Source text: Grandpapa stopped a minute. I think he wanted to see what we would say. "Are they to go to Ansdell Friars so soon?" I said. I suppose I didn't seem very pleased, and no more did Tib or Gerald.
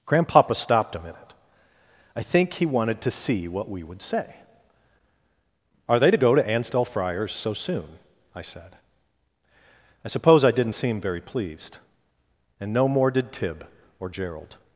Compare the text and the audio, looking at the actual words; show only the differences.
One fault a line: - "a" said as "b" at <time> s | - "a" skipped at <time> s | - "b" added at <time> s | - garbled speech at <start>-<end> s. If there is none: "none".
none